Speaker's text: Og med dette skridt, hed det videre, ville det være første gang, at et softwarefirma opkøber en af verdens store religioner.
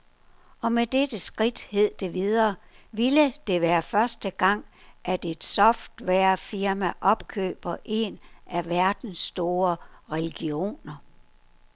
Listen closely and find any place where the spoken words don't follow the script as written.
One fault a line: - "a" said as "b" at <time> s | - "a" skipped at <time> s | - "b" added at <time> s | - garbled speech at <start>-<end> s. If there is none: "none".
none